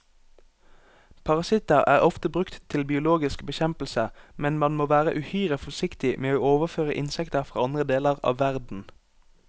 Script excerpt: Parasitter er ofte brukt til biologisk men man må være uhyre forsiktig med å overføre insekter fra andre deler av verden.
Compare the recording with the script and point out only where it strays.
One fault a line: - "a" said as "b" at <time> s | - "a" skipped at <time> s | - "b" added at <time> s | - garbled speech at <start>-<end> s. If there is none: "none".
- "bekjempelse" added at 3.5 s